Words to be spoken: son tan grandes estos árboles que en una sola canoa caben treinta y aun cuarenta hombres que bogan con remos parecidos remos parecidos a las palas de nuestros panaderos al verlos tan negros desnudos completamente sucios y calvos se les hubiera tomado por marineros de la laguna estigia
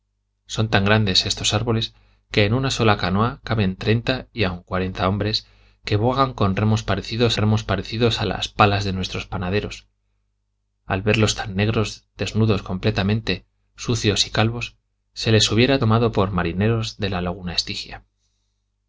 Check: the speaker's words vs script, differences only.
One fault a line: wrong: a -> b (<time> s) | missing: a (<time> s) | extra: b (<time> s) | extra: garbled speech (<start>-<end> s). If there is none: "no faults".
no faults